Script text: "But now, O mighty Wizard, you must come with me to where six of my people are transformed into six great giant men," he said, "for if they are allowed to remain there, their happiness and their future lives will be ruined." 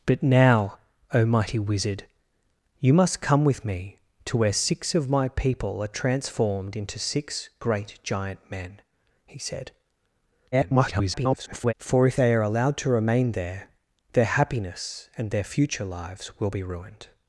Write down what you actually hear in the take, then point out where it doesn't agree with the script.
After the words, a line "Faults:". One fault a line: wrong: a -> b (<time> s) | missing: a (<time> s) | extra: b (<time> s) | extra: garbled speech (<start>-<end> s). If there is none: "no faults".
"But now, O mighty Wizard, you must come with me to where six of my people are transformed into six great giant men," he said, [garbled] "for if they are allowed to remain there, their happiness and their future lives will be ruined."
Faults:
extra: garbled speech (10.5-11.7 s)